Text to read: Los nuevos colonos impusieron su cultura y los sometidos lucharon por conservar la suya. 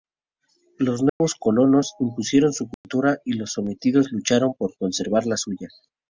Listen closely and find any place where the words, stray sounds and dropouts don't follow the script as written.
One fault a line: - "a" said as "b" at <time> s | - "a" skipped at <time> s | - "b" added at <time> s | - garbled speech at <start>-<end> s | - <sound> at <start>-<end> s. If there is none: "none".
- dropout at 1.1-1.2 s
- dropout at 2.7-2.8 s